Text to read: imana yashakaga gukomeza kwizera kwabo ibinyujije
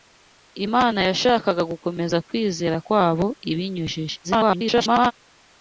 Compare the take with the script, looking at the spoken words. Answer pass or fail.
fail